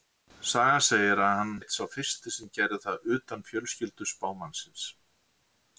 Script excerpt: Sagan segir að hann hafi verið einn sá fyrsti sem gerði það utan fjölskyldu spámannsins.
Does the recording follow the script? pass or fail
fail